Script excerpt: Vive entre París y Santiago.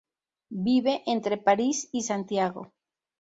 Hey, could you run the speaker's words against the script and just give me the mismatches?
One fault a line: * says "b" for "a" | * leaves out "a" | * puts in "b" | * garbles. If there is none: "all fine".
all fine